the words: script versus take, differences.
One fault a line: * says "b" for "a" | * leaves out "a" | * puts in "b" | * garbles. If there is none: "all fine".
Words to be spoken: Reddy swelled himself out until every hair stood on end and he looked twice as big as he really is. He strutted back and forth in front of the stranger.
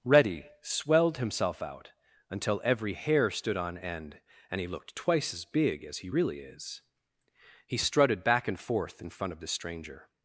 all fine